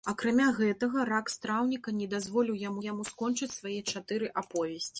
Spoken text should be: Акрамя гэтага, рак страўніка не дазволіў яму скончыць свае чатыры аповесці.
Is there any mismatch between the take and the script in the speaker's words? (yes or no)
yes